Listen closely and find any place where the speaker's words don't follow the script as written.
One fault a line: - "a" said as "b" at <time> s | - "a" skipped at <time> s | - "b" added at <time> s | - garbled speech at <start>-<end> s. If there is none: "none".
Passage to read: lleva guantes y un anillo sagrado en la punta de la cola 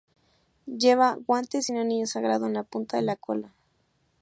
none